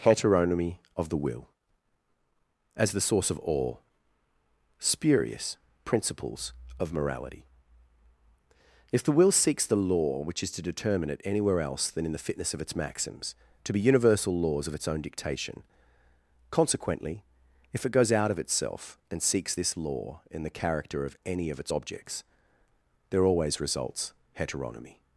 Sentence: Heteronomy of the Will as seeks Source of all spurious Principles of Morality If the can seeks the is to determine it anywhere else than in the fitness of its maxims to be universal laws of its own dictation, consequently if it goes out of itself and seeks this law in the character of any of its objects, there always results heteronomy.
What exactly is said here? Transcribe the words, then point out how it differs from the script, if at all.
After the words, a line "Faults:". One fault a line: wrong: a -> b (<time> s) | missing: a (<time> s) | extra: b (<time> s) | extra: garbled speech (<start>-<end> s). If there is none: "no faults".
Heteronomy of the Will as the Source of all spurious Principles of Morality If the will seeks the law which is to determine it anywhere else than in the fitness of its maxims to be universal laws of its own dictation, consequently if it goes out of itself and seeks this law in the character of any of its objects, there always results heteronomy.
Faults:
wrong: seeks -> the (2.9 s)
wrong: can -> will (9.1 s)
extra: law which (9.8 s)